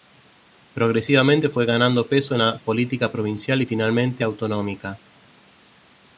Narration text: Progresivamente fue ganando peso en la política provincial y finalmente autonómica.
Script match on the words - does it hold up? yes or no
yes